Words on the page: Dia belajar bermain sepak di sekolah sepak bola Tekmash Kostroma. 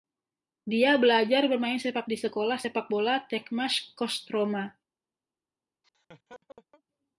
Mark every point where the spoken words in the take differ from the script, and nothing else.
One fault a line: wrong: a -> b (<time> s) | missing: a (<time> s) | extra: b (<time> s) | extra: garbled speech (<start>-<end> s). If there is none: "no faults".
no faults